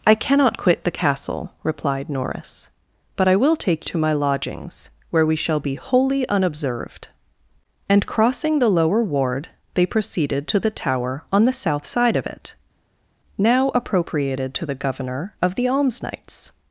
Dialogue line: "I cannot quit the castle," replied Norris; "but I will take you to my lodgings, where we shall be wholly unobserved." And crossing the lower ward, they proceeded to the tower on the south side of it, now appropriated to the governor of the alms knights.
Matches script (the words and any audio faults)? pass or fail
fail